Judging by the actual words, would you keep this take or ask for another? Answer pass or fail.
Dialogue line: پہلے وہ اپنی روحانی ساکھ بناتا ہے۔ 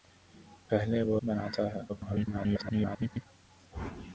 fail